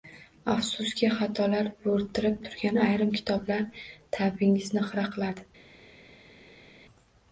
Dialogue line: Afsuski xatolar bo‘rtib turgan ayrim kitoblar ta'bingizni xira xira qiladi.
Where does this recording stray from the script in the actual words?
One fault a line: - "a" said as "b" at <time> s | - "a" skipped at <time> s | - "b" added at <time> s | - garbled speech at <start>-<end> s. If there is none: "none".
- "xira" skipped at 5.0 s